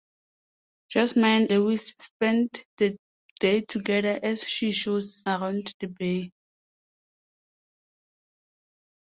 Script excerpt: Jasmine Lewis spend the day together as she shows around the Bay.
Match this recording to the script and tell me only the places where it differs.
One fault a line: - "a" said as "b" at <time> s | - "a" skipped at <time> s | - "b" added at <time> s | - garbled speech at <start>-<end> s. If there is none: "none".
none